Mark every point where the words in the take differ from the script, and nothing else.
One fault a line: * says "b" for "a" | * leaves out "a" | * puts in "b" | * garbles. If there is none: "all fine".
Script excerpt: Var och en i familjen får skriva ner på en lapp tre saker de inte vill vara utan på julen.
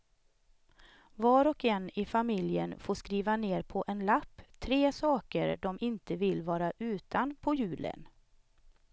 all fine